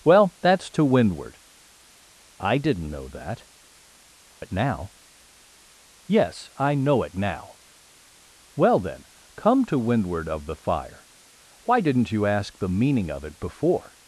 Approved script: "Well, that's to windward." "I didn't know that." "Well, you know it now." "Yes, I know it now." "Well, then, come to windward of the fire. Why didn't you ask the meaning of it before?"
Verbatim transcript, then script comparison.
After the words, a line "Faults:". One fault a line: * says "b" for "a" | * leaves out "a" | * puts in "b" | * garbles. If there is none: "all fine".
"Well, that's to windward." "I didn't know that." "It now." "Yes, I know it now." "Well, then, come to windward of the fire. Why didn't you ask the meaning of it before?"
Faults:
* leaves out "Well you know"